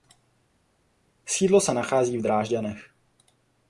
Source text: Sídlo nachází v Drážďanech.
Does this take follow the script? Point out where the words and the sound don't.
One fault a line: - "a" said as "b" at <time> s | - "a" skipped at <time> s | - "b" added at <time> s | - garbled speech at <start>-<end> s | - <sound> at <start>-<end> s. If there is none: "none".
- "se" added at 1.6 s